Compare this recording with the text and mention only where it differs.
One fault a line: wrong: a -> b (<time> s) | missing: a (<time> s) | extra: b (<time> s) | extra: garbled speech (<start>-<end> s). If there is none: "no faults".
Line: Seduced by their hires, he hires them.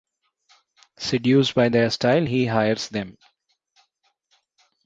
wrong: hires -> style (1.9 s)